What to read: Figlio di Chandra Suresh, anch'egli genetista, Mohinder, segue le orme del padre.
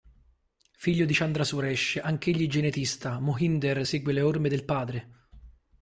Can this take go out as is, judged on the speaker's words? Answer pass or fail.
pass